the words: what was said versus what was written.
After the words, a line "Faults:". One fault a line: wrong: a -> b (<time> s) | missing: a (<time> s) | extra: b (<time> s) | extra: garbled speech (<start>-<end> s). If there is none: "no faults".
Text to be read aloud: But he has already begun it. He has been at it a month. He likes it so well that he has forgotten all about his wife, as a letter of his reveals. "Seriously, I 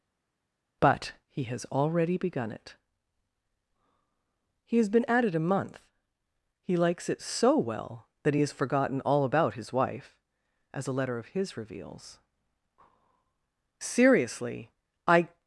But he has already begun it. He has been at it a month. He likes it so well that he has forgotten all about his wife, as a letter of his reveals. "Seriously, I
Faults:
no faults